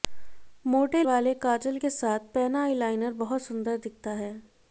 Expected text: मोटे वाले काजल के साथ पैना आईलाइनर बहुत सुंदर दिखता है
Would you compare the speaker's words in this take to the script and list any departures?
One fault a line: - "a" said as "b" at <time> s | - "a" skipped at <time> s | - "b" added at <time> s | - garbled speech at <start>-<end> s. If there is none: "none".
none